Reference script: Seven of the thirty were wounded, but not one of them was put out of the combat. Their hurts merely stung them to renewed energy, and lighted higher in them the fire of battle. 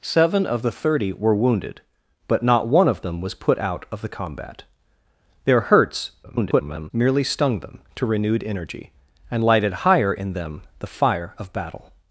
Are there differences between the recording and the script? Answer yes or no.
yes